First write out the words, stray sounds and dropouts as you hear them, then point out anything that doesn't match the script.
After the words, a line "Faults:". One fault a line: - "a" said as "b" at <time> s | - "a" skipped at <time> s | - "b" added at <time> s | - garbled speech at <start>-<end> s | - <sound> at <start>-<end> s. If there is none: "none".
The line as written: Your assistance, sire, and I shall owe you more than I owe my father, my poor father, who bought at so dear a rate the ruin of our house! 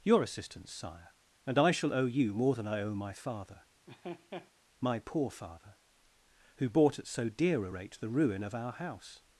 Your assistance, sire, and I shall owe you more than I owe my father, my poor father, who bought at so dear a rate the ruin of our house!
Faults:
- laugh at 3.9-4.5 s